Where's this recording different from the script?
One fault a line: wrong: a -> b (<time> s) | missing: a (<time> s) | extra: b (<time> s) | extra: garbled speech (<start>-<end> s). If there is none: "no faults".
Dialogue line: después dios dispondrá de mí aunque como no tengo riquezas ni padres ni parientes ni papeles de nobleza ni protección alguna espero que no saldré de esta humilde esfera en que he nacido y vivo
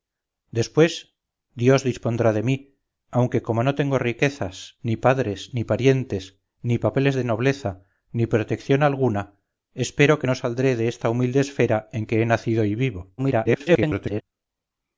extra: garbled speech (13.2-14.2 s)